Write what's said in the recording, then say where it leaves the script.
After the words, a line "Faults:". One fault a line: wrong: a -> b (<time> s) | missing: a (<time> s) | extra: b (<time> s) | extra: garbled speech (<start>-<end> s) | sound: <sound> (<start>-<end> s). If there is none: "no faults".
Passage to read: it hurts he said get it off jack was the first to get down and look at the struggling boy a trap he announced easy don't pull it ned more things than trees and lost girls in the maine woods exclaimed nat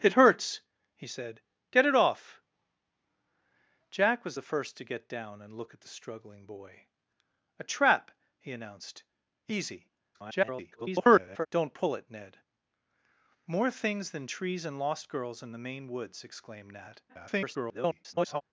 it hurts he said get it off jack was the first to get down and look at the struggling boy a trap he announced easy [garbled] don't pull it ned more things than trees and lost girls in the maine woods exclaimed nat [garbled]
Faults:
extra: garbled speech (10.1-11.5 s)
extra: garbled speech (17.1-18.4 s)